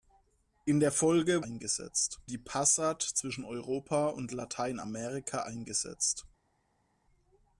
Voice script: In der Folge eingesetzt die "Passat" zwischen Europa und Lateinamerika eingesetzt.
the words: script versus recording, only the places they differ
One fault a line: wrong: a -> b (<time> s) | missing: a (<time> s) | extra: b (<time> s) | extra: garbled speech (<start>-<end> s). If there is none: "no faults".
no faults